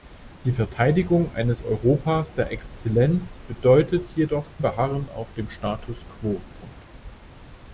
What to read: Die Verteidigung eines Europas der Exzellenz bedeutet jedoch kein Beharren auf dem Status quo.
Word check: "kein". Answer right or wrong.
wrong